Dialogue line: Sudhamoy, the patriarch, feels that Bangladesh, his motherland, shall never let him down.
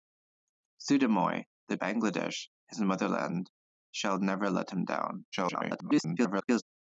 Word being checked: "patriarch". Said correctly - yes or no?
no